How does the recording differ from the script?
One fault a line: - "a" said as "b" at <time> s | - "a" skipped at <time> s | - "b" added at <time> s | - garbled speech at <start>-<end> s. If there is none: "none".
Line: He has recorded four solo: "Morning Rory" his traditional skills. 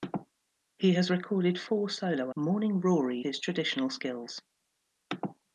none